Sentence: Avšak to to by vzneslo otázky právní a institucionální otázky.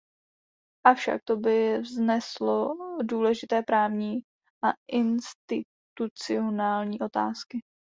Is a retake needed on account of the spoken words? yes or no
yes